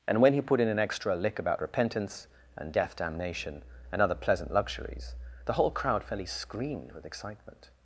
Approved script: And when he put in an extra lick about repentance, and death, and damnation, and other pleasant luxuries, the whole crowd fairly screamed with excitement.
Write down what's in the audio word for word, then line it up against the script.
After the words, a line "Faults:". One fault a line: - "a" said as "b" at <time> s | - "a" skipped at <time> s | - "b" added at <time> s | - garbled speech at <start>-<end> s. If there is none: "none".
And when he put in an extra lick about repentance, and death, damnation, and other pleasant luxuries, the whole crowd fairly screamed with excitement.
Faults:
- "and" skipped at 3.0 s